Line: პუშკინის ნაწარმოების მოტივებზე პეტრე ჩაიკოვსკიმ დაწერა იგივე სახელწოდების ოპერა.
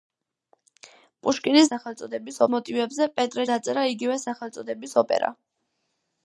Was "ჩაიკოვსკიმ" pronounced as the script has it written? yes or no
no